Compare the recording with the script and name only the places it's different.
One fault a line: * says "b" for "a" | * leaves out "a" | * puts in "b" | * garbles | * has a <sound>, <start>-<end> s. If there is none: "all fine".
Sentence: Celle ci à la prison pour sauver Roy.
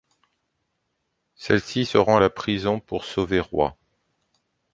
* puts in "se rend"